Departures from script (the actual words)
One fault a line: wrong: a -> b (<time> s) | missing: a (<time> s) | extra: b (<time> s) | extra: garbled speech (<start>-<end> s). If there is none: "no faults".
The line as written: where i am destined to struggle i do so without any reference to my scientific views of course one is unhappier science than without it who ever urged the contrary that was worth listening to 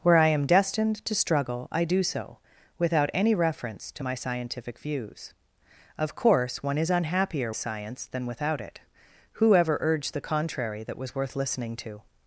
no faults